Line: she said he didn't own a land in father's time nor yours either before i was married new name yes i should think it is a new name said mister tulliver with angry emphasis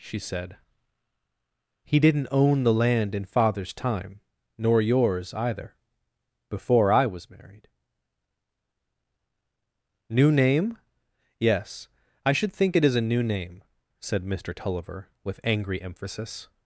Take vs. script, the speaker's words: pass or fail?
fail